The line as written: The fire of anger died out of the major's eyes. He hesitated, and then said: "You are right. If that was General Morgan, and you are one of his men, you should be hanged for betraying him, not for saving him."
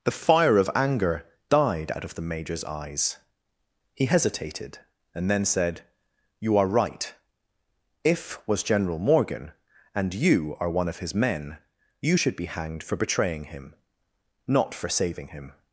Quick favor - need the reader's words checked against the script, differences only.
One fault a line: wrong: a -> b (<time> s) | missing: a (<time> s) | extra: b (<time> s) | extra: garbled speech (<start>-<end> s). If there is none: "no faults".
missing: that (8.4 s)